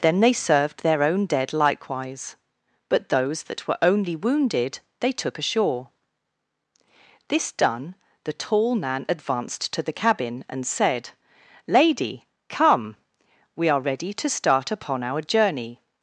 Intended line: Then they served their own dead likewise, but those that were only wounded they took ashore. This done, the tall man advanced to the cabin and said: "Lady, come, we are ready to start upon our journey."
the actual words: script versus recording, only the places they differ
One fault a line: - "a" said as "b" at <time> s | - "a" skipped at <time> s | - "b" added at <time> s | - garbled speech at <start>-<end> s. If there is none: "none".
none